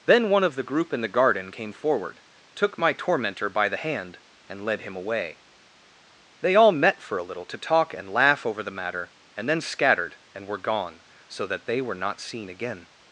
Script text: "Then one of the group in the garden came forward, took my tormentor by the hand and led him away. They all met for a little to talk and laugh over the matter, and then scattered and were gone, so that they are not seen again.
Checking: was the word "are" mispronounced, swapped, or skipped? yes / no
yes